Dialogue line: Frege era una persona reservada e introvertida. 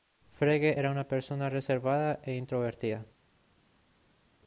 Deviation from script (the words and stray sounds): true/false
false